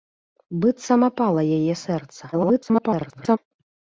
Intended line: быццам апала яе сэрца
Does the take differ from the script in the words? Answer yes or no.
yes